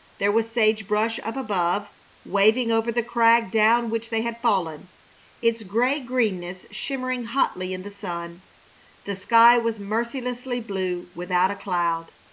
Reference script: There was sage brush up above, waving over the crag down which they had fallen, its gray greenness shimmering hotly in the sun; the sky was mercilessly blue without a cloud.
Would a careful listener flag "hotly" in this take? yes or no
no